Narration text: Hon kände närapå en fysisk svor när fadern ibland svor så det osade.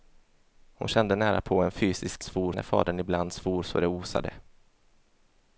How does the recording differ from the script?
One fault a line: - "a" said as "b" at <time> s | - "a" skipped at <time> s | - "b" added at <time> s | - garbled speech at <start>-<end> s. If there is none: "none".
none